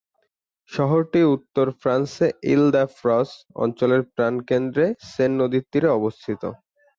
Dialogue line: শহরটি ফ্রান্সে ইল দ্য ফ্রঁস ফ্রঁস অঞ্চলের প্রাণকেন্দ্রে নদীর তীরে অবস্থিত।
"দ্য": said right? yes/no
yes